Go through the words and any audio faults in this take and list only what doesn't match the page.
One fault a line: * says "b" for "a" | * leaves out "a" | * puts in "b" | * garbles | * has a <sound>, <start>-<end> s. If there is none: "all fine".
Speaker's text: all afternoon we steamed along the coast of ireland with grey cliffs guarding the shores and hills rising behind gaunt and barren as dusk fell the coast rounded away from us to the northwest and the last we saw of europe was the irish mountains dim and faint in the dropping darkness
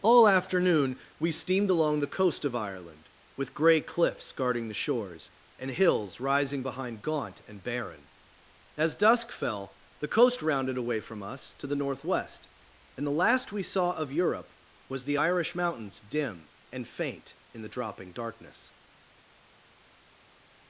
all fine